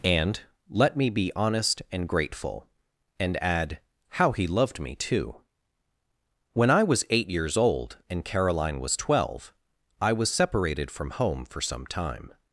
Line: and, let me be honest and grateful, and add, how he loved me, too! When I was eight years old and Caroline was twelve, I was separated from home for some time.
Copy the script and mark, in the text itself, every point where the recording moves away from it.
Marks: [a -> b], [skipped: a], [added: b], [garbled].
and, let me be honest and grateful, and add, how he loved me, too! When I was eight years old and Caroline was twelve, I was separated from home for some time.